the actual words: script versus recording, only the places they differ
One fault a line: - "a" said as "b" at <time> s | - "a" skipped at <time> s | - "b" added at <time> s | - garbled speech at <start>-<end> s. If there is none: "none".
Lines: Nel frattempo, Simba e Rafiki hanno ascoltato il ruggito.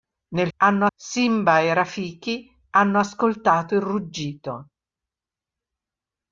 - "frattempo" said as "hanno" at 0.6 s